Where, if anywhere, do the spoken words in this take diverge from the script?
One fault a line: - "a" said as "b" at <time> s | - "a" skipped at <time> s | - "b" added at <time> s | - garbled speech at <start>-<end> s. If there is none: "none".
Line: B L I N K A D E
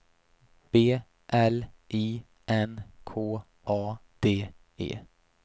none